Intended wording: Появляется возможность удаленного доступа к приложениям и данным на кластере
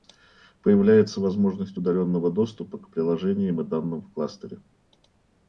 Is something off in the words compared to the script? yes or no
yes